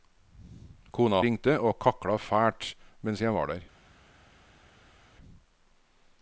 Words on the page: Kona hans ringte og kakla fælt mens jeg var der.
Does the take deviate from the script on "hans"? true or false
true